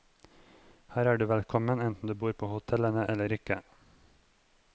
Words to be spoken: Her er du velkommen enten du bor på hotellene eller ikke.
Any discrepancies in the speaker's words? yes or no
no